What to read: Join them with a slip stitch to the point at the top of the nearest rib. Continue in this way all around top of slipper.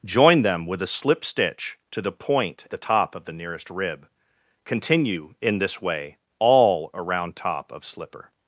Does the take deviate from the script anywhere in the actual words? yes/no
yes